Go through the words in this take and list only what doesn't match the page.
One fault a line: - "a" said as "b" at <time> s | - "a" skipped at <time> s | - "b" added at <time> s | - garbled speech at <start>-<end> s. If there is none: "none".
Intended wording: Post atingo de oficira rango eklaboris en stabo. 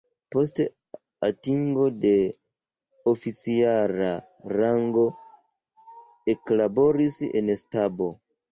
none